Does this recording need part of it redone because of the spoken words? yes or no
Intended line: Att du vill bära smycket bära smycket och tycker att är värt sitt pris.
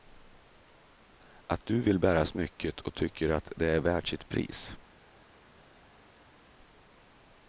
yes